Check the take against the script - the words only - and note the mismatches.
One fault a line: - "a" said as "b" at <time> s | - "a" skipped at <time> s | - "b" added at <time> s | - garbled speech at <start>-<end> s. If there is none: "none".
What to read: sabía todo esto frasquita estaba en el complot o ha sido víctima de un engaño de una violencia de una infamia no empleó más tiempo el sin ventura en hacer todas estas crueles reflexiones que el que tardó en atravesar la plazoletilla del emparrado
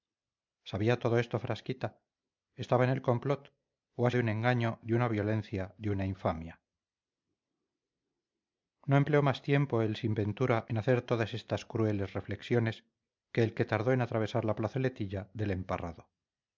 - "sido víctima" skipped at 4.1 s